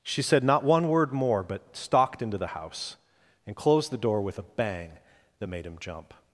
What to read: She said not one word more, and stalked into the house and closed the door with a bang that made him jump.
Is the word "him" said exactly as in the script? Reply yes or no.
yes